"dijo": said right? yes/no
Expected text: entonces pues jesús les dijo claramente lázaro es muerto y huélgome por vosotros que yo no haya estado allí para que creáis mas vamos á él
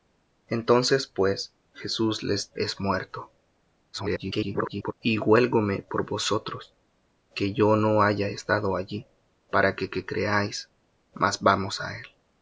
no